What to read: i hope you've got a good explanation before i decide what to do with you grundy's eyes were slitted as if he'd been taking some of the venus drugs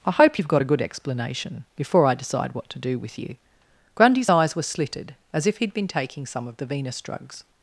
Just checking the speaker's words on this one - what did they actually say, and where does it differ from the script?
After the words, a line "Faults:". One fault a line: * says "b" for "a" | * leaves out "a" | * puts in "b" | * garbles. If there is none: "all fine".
i hope you've got a good explanation before i decide what to do with you grundy's eyes were slitted as if he'd been taking some of the venus drugs
Faults:
all fine